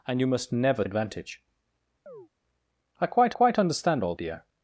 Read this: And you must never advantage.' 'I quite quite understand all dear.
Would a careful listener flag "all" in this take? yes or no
no